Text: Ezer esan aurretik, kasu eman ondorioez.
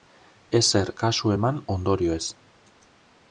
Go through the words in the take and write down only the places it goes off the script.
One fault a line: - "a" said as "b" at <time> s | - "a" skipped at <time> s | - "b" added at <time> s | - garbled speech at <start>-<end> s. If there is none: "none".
- "esan aurretik" skipped at 0.9 s